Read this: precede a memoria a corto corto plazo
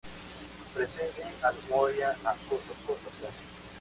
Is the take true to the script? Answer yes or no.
yes